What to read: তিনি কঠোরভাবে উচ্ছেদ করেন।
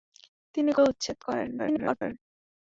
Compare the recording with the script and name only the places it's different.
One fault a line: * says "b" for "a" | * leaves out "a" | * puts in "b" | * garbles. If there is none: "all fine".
* leaves out "কঠোরভাবে"
* garbles